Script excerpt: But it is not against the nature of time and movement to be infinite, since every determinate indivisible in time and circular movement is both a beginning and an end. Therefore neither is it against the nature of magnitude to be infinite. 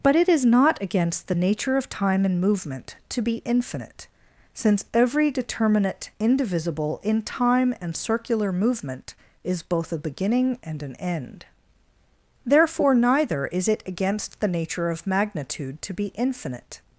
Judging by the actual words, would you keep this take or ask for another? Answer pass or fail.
pass